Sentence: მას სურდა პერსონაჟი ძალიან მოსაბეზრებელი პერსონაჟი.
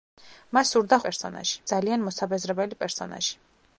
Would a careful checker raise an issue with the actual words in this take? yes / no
no